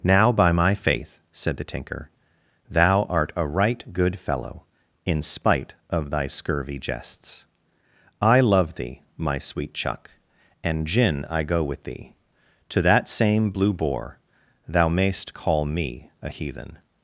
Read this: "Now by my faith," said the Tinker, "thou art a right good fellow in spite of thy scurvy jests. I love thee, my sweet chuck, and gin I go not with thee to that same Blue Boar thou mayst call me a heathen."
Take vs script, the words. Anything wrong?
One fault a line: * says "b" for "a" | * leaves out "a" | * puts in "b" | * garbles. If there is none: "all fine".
* leaves out "not"